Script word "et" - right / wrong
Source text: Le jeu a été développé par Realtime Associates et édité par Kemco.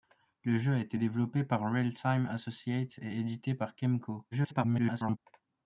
right